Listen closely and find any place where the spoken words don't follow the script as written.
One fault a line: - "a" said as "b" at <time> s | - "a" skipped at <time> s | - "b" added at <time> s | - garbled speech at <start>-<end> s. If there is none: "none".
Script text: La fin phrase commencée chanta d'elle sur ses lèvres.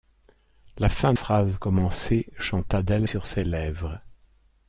none